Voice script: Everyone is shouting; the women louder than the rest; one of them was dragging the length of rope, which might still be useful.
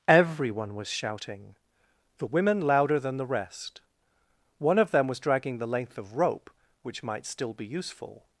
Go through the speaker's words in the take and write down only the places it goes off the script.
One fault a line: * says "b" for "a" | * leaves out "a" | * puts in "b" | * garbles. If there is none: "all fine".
* says "was" for "is"